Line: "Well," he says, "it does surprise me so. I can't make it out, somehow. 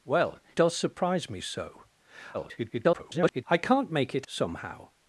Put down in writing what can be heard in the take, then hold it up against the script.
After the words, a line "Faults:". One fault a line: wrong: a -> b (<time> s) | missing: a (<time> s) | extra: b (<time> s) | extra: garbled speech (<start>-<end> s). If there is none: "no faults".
"Well," does surprise me so. [garbled] I can't make it somehow.
Faults:
missing: he says it (0.4 s)
extra: garbled speech (2.3-3.4 s)
missing: out (4.3 s)